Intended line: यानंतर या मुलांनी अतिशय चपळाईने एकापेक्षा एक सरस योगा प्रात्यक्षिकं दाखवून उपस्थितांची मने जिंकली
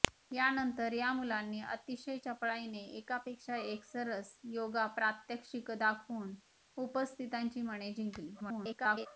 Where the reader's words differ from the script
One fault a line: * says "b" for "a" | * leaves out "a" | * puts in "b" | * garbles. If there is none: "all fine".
* garbles